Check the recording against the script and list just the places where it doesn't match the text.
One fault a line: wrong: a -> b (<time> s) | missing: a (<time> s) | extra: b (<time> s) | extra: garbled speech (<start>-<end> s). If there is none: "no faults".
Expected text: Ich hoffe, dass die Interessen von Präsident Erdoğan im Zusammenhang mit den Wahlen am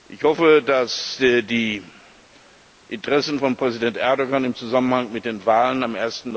no faults